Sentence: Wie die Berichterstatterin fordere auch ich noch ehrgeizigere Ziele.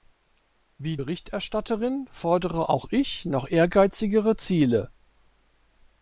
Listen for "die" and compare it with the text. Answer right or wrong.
wrong